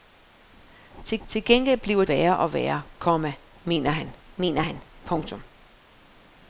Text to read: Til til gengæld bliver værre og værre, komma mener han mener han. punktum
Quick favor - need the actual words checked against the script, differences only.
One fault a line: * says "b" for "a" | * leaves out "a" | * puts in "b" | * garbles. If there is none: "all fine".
all fine